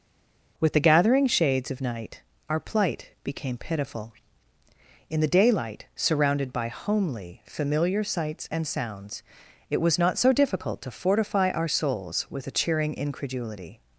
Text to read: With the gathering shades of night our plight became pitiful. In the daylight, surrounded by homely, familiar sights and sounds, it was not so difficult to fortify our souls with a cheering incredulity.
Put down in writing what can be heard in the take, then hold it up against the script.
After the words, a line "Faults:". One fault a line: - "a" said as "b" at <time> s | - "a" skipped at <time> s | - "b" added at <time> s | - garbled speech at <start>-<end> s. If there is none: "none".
With the gathering shades of night our plight became pitiful. In the daylight, surrounded by homely, familiar sights and sounds, it was not so difficult to fortify our souls with a cheering incredulity.
Faults:
none